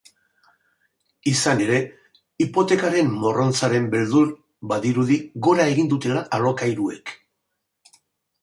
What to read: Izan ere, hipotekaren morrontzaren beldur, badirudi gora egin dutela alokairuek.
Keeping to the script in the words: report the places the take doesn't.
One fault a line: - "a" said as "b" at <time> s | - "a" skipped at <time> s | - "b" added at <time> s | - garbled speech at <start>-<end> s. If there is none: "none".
none